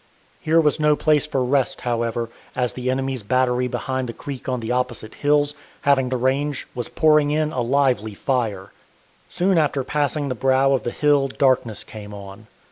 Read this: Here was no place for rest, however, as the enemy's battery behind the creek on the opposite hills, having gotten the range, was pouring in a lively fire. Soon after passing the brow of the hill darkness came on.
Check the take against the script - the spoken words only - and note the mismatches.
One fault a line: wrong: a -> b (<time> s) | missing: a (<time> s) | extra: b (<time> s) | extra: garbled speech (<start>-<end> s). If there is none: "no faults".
missing: gotten (6.1 s)